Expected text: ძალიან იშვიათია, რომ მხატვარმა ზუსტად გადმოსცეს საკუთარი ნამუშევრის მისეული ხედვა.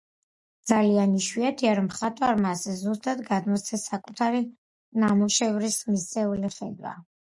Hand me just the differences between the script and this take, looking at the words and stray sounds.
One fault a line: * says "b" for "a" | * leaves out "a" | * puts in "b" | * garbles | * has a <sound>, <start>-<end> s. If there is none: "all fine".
* puts in "ასე"